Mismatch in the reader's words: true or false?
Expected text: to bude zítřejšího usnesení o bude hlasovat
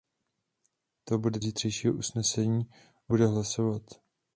false